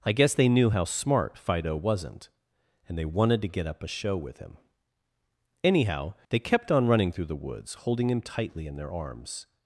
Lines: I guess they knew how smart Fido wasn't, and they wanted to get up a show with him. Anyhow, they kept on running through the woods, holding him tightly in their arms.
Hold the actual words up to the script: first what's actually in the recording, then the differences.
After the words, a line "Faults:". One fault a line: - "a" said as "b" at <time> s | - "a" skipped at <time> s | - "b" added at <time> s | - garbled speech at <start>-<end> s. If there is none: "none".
I guess they knew how smart Fido wasn't, and they wanted to get up a show with him. Anyhow, they kept on running through the woods, holding him tightly in their arms.
Faults:
none